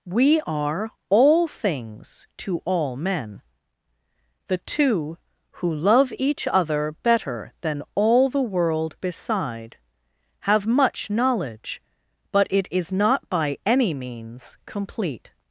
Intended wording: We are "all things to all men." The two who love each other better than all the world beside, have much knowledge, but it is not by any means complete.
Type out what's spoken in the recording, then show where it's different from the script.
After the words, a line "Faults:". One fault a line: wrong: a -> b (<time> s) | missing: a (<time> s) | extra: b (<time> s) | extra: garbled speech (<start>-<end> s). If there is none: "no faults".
We are "all things to all men." The two who love each other better than all the world beside, have much knowledge, but it is not by any means complete.
Faults:
no faults